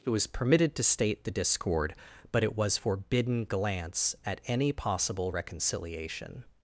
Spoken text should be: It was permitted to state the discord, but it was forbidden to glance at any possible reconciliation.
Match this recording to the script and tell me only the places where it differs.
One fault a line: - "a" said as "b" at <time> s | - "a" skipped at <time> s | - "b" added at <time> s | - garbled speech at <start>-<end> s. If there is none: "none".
- "to" skipped at 3.4 s